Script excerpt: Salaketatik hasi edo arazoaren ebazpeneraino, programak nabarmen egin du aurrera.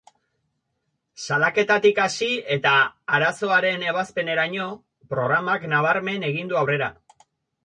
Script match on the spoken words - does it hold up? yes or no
no